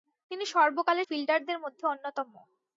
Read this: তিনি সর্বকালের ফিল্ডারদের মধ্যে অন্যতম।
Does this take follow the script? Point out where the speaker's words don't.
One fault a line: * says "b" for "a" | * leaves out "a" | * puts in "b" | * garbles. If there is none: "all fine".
all fine